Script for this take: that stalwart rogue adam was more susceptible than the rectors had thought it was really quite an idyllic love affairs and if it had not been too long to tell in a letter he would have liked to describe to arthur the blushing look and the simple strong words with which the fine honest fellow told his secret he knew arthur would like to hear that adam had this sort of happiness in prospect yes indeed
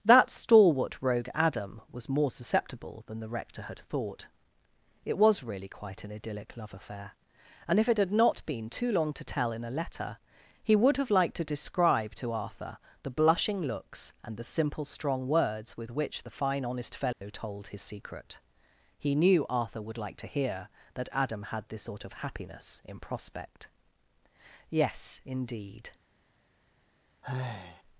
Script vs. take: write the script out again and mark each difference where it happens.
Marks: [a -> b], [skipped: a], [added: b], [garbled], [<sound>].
that stalwart rogue adam was more susceptible than the [rectors -> rector] had thought it was really quite an idyllic love [affairs -> affair] and if it had not been too long to tell in a letter he would have liked to describe to arthur the blushing [look -> looks] and the simple strong words with which the fine honest fellow [dropout] told his secret he knew arthur would like to hear that adam had this sort of happiness in prospect yes indeed [sigh]